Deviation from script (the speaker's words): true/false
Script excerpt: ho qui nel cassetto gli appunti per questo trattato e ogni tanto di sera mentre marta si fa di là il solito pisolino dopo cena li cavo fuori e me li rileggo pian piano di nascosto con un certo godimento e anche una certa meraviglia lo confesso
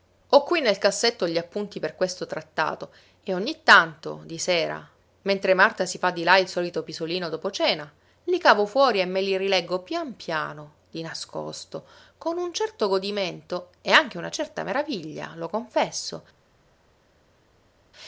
false